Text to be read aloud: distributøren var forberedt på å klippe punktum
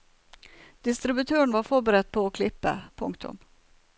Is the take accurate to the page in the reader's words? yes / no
yes